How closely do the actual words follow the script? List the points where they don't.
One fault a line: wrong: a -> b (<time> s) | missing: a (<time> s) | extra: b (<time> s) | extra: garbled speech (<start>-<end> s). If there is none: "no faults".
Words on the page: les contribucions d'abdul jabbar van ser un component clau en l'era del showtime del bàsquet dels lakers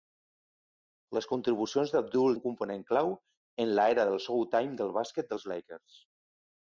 missing: jabbar van ser (2.4 s)